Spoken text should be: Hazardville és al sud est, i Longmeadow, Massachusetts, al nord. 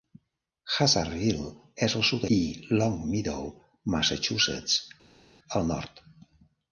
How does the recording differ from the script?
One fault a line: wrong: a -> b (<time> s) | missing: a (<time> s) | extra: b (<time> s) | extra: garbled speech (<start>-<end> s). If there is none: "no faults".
missing: est (2.2 s)